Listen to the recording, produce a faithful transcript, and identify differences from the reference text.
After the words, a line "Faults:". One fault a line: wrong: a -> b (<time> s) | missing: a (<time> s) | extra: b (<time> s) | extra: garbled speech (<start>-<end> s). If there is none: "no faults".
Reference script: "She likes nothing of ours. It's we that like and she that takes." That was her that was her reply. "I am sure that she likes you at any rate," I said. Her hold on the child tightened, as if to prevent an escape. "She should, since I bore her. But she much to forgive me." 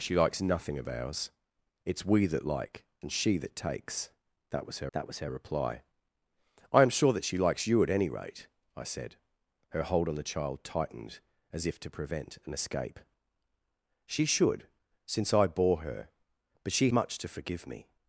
"She likes nothing of ours. It's we that like and she that takes." That was her that was her reply. "I am sure that she likes you at any rate," I said. Her hold on the child tightened, as if to prevent an escape. "She should, since I bore her. But she much to forgive me."
Faults:
no faults